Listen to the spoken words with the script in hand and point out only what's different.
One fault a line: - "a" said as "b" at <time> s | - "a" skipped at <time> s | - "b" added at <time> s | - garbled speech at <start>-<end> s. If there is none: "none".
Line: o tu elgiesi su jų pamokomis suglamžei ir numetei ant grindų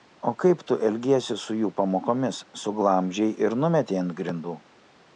- "kaip" added at 0.4 s